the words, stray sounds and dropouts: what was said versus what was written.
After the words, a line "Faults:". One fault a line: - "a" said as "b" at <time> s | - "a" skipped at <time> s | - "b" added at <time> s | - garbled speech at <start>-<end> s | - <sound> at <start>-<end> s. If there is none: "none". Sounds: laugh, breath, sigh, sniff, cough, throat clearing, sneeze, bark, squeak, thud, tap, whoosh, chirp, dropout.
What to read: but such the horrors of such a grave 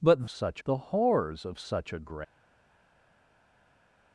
but such the horrors of such a grave
Faults:
none